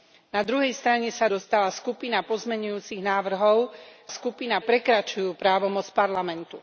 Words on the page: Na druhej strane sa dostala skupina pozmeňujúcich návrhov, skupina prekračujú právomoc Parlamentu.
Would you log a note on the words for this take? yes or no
no